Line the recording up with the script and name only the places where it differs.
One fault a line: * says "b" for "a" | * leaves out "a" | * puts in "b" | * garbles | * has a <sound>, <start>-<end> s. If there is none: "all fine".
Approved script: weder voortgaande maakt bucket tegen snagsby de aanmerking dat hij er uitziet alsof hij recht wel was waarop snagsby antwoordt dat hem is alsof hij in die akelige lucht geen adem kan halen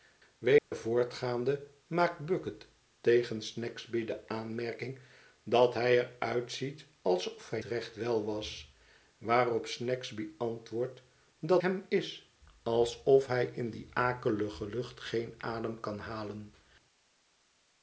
* has a dropout, 0.6-0.7 s